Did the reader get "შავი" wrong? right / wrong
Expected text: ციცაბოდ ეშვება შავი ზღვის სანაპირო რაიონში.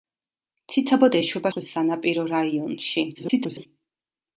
wrong